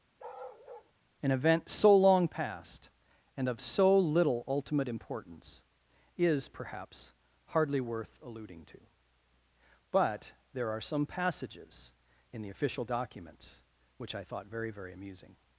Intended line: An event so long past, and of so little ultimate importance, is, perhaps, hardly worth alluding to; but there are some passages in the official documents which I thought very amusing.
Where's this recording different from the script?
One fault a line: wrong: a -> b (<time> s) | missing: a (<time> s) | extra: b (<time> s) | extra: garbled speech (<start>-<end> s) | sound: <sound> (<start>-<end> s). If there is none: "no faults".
sound: bark (0.2-0.9 s)
extra: very (14.7 s)